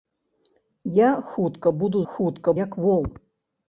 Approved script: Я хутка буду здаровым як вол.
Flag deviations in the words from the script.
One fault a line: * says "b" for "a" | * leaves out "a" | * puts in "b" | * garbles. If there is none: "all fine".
* says "хутка" for "здаровым"